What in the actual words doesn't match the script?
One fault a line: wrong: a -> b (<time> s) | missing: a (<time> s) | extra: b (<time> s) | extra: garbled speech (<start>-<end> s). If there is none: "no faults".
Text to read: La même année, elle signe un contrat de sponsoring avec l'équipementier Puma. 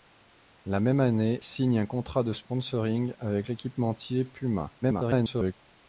missing: elle (1.4 s)
extra: garbled speech (4.8-5.5 s)